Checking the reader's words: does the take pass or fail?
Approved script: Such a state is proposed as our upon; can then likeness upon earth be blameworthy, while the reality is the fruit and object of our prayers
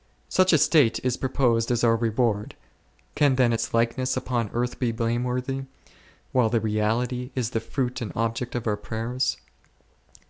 fail